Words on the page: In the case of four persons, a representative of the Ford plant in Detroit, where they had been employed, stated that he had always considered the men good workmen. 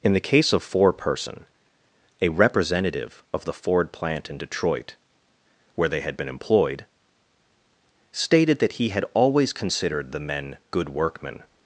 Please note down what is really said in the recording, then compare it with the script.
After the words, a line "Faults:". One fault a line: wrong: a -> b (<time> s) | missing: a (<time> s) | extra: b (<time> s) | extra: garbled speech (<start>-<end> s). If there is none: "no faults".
In the case of four person, a representative of the Ford plant in Detroit, where they had been employed, stated that he had always considered the men good workmen.
Faults:
wrong: persons -> person (0.9 s)